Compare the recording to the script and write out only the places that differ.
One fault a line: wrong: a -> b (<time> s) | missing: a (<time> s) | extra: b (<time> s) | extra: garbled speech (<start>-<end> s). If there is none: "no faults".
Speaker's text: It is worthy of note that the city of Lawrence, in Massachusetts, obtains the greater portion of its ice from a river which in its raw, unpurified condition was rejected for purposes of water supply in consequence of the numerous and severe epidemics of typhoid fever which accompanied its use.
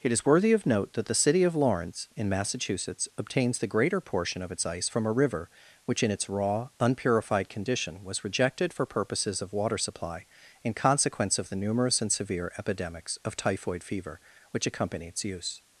wrong: accompanied -> accompany (14.7 s)